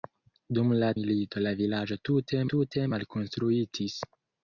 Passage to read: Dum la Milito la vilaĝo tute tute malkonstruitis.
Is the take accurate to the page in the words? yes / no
yes